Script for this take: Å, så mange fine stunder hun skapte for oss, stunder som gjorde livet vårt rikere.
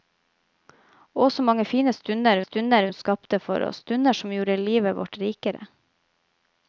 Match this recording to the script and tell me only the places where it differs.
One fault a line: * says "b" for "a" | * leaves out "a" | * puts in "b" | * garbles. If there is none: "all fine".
* puts in "stunder"